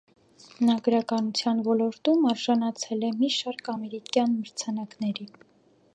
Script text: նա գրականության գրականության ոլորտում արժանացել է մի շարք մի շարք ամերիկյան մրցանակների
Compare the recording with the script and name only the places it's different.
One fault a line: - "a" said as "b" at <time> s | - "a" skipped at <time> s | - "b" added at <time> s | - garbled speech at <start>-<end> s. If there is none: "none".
- "գրականության" skipped at 1.6 s
- "մի շարք" skipped at 3.7 s